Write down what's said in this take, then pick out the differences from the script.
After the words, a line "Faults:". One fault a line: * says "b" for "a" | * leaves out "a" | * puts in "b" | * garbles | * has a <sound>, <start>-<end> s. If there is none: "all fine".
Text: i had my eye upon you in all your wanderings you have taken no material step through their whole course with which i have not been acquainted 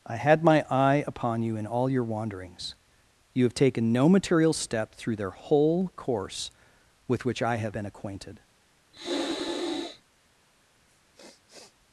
i had my eye upon you in all your wanderings you have taken no material step through their whole course with which i have been acquainted
Faults:
* leaves out "not"
* has a sniff, 8.9-10.0 s
* has a sniff, 10.9-11.8 s